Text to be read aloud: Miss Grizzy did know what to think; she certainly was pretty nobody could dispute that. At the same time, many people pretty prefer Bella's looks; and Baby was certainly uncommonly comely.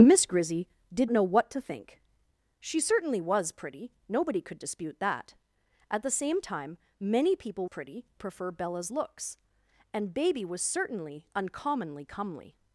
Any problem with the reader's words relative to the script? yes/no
no